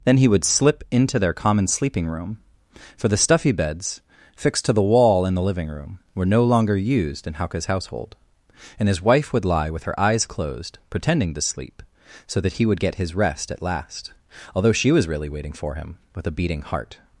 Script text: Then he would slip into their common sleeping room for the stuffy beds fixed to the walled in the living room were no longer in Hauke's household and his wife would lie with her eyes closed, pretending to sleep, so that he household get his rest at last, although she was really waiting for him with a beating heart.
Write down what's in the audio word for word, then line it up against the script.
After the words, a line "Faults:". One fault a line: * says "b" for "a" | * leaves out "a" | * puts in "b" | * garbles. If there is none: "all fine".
Then he would slip into their common sleeping room for the stuffy beds fixed to the wall in the living room were no longer used in Hauke's household and his wife would lie with her eyes closed, pretending to sleep, so that he would get his rest at last, although she was really waiting for him with a beating heart.
Faults:
* says "wall" for "walled"
* puts in "used"
* says "would" for "household"